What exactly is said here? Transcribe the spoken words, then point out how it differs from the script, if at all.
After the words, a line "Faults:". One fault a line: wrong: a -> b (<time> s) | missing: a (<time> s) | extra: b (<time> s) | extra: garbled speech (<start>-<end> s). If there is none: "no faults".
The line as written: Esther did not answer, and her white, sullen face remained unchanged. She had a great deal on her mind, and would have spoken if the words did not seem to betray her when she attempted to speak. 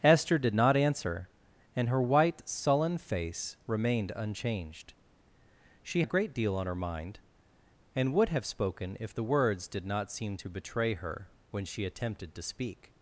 Esther did not answer, and her white, sullen face remained unchanged. She a great deal on her mind, and would have spoken if the words did not seem to betray her when she attempted to speak.
Faults:
missing: had (6.0 s)